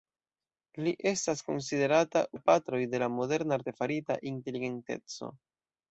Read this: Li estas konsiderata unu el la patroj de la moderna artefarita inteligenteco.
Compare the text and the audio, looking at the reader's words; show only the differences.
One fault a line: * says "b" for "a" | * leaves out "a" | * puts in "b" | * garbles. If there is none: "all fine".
* leaves out "unu el"